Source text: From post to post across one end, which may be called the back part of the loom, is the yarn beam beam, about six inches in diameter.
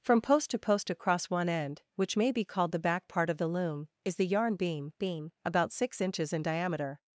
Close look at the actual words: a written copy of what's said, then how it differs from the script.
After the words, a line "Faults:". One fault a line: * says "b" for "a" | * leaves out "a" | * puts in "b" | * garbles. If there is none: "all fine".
From post to post across one end, which may be called the back part of the loom, is the yarn beam beam, about six inches in diameter.
Faults:
all fine